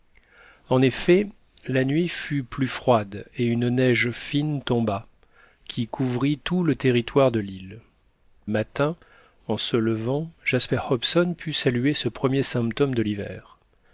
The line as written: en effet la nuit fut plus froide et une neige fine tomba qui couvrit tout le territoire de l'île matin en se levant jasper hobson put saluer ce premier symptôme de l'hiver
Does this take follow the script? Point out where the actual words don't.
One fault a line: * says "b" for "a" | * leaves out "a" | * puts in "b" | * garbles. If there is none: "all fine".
all fine